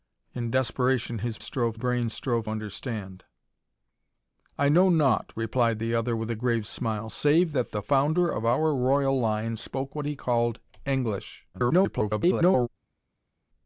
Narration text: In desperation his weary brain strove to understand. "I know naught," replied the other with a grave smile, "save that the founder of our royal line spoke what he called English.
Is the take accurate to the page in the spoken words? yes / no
no